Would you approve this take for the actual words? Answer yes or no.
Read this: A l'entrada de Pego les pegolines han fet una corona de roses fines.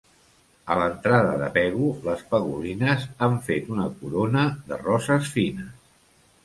yes